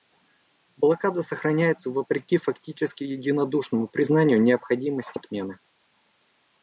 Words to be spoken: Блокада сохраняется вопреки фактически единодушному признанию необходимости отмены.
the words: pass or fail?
pass